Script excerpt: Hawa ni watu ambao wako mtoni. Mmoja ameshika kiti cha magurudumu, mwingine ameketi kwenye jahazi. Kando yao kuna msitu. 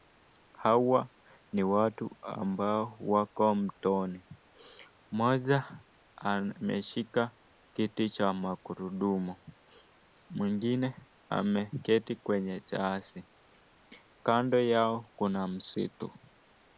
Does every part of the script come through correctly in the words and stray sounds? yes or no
yes